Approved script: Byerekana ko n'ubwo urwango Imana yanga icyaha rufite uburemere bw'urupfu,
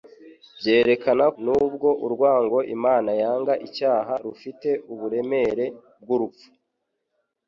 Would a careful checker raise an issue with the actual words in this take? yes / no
yes